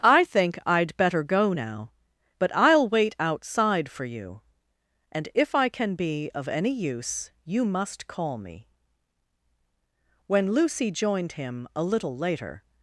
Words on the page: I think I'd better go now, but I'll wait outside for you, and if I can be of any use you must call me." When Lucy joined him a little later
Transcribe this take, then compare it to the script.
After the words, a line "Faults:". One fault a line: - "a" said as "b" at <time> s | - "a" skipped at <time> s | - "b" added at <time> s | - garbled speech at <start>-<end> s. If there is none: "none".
I think I'd better go now, but I'll wait outside for you, and if I can be of any use you must call me." When Lucy joined him a little later
Faults:
none